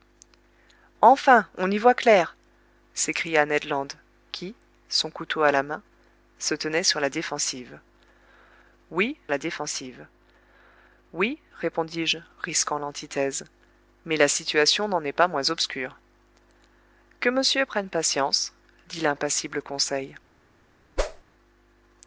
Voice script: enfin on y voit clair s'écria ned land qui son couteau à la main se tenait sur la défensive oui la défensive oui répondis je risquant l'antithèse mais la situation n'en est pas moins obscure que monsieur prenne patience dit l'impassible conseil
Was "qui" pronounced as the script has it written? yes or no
yes